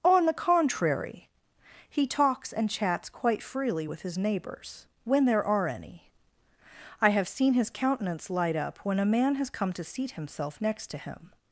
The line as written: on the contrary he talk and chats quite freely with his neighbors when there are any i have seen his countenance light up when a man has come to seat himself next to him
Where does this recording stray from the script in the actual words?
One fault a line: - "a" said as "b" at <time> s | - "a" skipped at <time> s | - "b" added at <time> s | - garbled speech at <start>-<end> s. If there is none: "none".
- "talk" said as "talks" at 2.1 s